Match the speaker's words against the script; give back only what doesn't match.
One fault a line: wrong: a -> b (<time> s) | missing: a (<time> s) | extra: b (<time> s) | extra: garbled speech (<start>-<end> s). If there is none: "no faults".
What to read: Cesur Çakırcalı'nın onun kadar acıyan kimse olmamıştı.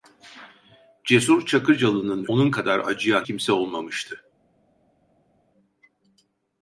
no faults